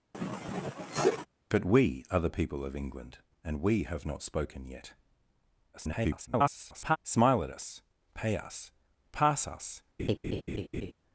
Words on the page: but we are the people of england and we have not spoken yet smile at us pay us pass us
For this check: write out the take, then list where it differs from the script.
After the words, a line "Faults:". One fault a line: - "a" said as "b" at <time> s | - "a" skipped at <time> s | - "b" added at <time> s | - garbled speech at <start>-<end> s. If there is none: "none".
but we are the people of england and we have not spoken yet [garbled] smile at us pay us pass us
Faults:
- garbled speech at 5.7-7.0 s